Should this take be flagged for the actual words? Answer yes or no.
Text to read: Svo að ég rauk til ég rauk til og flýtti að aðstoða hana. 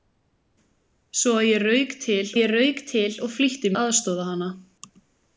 no